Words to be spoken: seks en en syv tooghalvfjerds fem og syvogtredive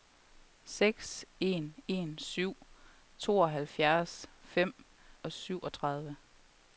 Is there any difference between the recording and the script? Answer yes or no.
no